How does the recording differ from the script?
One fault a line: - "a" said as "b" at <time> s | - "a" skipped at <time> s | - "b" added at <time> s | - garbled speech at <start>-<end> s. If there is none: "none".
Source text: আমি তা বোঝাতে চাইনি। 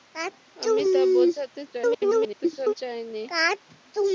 - garbled speech at 1.7-2.7 s